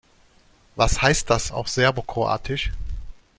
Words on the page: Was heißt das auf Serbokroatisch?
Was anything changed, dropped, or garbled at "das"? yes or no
no